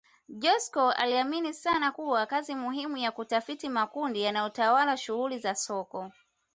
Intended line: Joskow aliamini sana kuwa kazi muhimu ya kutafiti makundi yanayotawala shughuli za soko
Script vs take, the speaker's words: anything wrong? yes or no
no